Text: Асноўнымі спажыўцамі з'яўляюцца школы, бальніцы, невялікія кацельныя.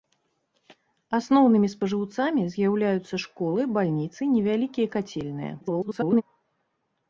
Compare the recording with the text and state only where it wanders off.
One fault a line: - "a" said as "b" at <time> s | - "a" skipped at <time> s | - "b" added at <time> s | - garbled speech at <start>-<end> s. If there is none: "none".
- garbled speech at 5.6-6.2 s